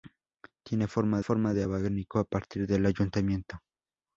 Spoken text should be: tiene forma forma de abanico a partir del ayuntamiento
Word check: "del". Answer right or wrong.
right